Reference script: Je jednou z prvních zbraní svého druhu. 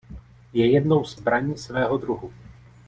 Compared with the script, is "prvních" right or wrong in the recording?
wrong